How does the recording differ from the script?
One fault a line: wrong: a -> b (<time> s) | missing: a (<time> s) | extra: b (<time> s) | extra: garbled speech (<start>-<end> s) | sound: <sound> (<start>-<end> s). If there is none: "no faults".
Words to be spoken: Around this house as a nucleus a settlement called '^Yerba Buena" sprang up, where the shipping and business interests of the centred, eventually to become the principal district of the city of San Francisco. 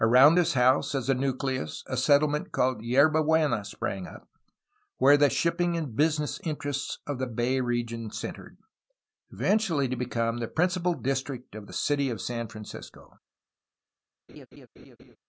extra: bay region (7.3 s)
sound: laugh (14.3-15.2 s)